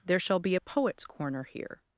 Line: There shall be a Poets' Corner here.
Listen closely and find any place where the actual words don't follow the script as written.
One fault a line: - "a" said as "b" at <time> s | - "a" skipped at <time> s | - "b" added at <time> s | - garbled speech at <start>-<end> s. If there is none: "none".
none